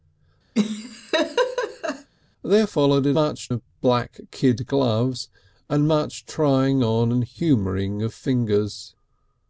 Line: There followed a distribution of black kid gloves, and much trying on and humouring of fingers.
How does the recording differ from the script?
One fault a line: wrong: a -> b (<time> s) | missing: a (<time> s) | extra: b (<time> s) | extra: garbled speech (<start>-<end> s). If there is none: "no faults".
wrong: distribution -> much (3.1 s)